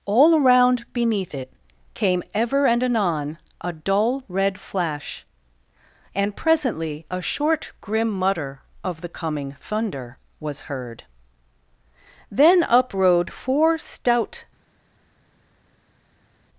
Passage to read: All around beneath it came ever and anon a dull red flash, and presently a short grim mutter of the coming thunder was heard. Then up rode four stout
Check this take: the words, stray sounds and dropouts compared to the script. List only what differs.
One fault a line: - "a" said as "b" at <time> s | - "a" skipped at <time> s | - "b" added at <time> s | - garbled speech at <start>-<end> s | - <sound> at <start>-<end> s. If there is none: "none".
none